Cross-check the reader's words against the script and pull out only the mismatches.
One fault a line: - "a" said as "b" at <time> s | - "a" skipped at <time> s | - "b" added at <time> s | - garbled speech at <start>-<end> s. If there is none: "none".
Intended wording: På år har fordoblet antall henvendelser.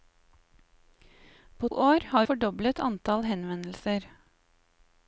none